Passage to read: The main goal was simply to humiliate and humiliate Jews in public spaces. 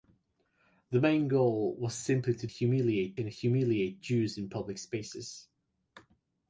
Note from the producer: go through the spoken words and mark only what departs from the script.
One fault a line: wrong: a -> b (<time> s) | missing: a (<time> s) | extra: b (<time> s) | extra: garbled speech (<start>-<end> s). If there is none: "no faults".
no faults